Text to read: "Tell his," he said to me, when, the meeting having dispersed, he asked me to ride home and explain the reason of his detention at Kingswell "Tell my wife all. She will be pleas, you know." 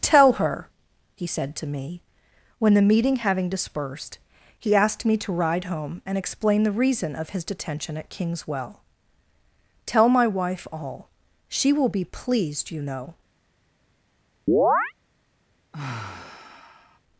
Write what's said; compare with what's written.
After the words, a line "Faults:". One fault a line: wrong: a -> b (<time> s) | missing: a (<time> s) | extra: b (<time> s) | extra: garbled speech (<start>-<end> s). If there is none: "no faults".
"Tell her," he said to me, when, the meeting having dispersed, he asked me to ride home and explain the reason of his detention at Kingswell "Tell my wife all. She will be pleased, you know."
Faults:
wrong: his -> her (0.3 s)
wrong: pleas -> pleased (12.0 s)